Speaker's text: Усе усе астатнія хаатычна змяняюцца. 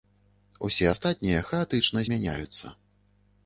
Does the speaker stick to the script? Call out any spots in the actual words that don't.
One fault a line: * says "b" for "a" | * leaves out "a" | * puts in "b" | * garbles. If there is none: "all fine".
* leaves out "усе"